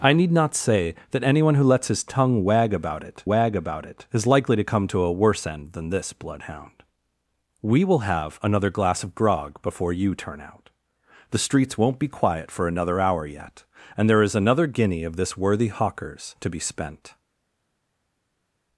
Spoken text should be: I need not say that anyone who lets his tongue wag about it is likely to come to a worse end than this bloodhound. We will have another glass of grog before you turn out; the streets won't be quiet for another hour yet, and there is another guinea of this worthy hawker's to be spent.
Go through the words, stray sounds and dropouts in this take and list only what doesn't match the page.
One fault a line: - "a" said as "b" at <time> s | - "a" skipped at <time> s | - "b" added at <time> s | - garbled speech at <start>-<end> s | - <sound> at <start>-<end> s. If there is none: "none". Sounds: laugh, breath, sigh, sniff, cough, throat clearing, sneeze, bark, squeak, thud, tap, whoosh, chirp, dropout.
- "wag about it" added at 3.3 s